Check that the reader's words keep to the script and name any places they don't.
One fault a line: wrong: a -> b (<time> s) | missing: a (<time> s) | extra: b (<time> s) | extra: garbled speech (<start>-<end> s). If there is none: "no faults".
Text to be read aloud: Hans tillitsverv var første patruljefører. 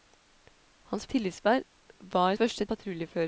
no faults